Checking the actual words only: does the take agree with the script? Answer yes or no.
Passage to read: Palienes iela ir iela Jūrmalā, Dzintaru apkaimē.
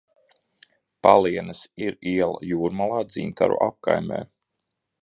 no